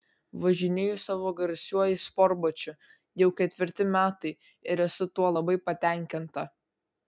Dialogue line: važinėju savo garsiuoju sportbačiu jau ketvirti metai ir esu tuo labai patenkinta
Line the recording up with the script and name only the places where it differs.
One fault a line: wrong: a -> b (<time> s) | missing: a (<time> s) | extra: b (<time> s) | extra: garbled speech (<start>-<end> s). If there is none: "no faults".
no faults